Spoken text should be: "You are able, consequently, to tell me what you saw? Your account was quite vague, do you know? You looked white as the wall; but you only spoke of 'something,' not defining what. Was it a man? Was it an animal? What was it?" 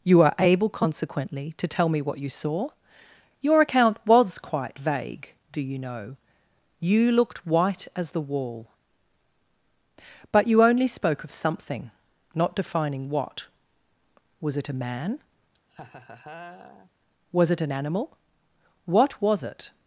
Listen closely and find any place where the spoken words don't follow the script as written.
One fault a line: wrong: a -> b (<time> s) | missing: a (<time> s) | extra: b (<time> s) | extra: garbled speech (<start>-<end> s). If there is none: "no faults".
no faults